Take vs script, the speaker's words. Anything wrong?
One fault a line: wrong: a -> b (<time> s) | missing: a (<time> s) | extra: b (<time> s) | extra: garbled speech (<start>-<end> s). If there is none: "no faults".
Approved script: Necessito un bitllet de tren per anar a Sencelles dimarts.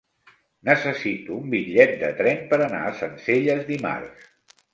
no faults